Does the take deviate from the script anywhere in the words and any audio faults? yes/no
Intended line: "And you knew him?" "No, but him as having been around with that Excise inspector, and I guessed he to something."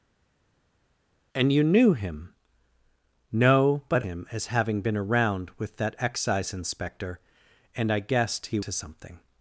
no